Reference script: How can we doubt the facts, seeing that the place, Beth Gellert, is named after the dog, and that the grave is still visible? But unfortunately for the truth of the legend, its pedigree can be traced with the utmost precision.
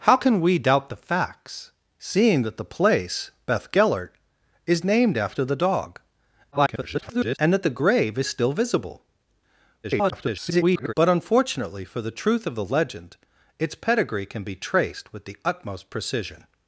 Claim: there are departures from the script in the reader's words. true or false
true